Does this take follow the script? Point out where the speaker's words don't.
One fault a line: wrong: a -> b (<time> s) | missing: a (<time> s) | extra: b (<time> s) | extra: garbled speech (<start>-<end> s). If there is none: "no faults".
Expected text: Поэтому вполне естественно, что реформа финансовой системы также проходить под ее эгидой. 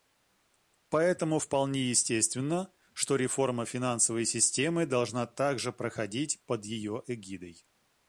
extra: должна (4.9 s)